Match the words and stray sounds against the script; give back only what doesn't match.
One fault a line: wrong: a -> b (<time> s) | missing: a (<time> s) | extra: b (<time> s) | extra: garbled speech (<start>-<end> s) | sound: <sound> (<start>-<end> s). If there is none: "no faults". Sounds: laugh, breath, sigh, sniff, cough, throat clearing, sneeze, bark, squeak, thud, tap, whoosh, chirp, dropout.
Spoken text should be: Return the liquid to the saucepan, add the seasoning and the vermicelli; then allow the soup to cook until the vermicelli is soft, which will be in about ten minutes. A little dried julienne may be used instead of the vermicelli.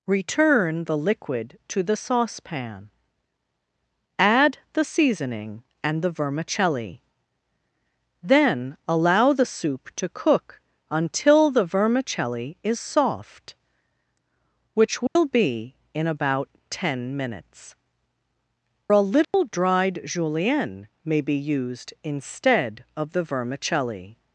sound: dropout (15.1-15.2 s)
sound: dropout (19.2-19.3 s)